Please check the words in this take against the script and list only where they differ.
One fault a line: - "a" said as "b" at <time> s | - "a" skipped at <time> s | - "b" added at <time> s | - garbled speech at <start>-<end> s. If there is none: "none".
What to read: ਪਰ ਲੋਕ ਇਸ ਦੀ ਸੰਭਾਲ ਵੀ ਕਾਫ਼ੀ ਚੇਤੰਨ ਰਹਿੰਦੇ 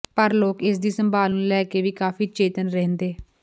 - "ਨੂੰ ਲੈ ਕੇ" added at 1.3 s